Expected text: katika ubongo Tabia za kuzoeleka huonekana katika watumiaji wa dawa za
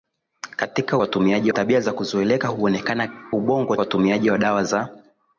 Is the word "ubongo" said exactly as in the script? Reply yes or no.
no